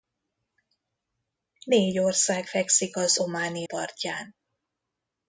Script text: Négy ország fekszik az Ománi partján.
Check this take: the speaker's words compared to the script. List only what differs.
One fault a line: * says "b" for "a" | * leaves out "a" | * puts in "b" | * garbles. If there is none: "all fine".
all fine